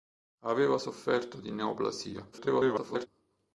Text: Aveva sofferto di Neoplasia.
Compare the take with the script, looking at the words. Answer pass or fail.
fail